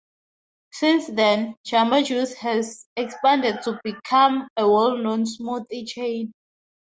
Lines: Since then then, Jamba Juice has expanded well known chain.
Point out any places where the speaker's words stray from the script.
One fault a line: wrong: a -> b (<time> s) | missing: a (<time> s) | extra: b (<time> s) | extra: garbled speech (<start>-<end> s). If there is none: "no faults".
missing: then (1.5 s)
extra: to become a (3.6 s)
extra: smoothie (5.2 s)